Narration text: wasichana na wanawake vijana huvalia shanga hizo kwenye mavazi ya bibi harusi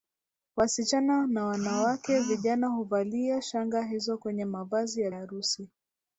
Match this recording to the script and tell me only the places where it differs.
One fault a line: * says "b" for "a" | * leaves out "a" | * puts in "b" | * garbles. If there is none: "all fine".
* leaves out "bibi"